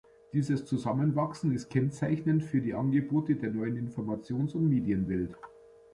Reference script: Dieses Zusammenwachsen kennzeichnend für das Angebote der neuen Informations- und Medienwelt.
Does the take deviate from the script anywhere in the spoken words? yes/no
yes